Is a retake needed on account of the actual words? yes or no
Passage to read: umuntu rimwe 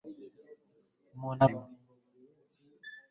no